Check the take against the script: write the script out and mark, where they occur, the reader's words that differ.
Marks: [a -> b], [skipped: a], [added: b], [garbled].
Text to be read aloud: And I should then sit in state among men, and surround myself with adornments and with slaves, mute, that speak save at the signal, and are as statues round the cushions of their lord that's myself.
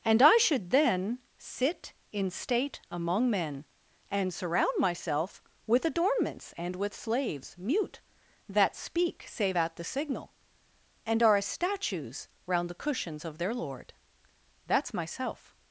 And I should then sit in state among men, and surround myself with adornments and with slaves, mute, that speak save at the signal, and are as statues round the cushions of their lord that's myself.